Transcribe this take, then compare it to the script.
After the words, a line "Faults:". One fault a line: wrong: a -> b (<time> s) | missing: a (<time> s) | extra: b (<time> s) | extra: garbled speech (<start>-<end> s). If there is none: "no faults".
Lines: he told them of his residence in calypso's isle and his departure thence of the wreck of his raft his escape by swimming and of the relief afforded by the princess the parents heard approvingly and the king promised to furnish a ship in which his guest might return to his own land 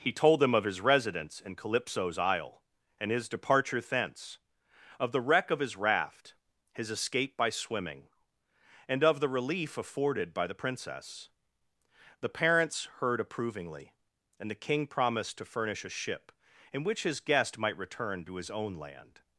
he told them of his residence in calypso's isle and his departure thence of the wreck of his raft his escape by swimming and of the relief afforded by the princess the parents heard approvingly and the king promised to furnish a ship in which his guest might return to his own land
Faults:
no faults